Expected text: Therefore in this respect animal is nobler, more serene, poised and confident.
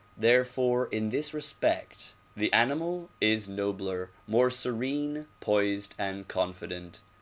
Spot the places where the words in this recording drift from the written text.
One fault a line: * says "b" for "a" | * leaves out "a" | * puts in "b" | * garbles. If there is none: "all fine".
* puts in "the"